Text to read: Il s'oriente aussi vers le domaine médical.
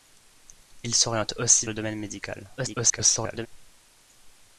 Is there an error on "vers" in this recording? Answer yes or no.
yes